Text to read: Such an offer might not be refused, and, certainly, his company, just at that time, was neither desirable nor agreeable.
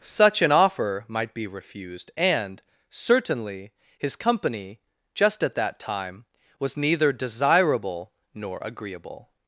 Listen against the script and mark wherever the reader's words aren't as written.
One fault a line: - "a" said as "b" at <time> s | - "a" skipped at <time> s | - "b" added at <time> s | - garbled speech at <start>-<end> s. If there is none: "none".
- "not" skipped at 1.4 s